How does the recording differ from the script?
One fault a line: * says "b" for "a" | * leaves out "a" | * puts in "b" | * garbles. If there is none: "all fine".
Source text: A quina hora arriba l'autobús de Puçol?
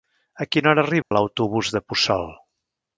all fine